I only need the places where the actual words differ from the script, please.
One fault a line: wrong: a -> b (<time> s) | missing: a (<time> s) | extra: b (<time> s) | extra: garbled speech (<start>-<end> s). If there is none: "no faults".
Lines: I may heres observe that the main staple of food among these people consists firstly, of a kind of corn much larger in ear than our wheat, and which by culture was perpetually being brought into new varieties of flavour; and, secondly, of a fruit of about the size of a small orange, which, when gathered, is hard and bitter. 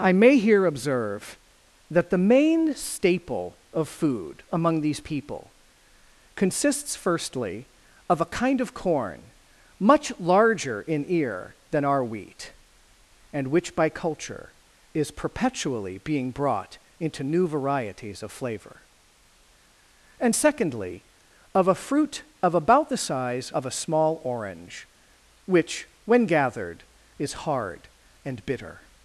wrong: heres -> here (0.4 s)
wrong: was -> is (14.9 s)